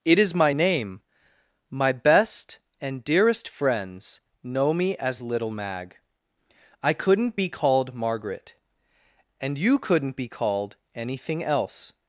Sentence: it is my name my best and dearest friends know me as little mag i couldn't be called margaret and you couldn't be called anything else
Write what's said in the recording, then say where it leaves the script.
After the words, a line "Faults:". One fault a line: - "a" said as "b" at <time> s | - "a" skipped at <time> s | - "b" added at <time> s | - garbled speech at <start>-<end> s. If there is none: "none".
it is my name my best and dearest friends know me as little mag i couldn't be called margaret and you couldn't be called anything else
Faults:
none